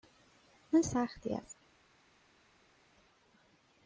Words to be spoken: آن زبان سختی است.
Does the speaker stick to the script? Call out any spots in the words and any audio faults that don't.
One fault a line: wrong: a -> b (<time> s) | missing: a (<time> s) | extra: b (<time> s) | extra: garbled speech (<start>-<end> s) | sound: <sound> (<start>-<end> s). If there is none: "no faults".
missing: زبان (0.8 s)